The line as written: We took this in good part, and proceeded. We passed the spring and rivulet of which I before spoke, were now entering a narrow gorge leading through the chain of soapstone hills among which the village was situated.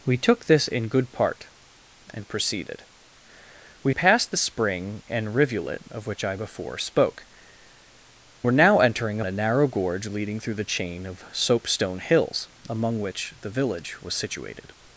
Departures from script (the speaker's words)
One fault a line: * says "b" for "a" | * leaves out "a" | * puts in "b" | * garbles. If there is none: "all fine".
all fine